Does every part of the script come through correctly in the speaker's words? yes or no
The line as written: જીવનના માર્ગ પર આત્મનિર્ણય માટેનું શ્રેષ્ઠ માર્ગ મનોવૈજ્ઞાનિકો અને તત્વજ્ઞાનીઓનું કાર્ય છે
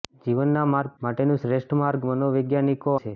no